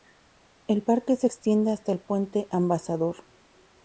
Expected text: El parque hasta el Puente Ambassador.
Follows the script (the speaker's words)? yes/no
no